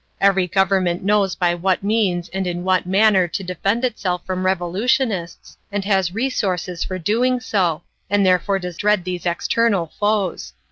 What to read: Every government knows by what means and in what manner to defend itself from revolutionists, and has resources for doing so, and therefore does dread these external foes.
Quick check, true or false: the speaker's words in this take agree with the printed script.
true